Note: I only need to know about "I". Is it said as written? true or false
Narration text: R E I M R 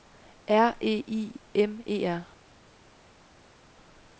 true